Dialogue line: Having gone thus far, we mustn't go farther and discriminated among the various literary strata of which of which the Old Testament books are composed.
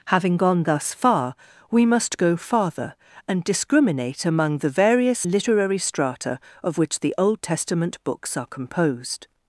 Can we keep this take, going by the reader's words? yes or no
no